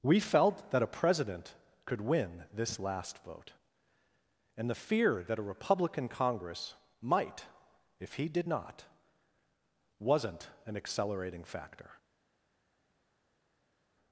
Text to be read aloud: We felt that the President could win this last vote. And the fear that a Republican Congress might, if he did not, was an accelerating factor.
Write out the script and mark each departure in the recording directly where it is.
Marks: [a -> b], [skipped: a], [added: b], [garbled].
We felt that [the -> a] President could win this last vote. And the fear that a Republican Congress might, if he did not, [was -> wasn't] an accelerating factor.